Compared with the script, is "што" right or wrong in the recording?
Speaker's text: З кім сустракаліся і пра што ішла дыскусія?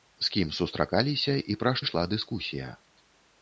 wrong